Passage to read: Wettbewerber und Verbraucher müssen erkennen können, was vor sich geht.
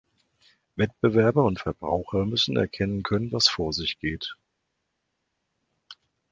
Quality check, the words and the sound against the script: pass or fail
pass